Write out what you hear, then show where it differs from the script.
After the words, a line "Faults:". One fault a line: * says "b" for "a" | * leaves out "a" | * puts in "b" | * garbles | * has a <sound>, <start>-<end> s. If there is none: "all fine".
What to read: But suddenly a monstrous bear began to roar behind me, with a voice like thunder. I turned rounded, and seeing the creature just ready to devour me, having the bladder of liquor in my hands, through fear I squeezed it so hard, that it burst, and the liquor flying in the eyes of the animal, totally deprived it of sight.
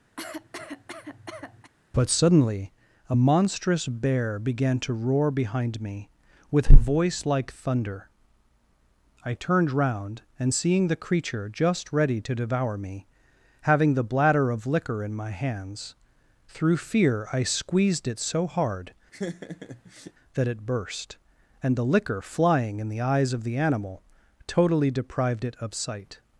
But suddenly a monstrous bear began to roar behind me, with a voice like thunder. I turned round, and seeing the creature just ready to devour me, having the bladder of liquor in my hands, through fear I squeezed it so hard, that it burst, and the liquor flying in the eyes of the animal, totally deprived it of sight.
Faults:
* has a cough, 0.2-1.7 s
* says "round" for "rounded"
* has a laugh, 19.1-20.1 s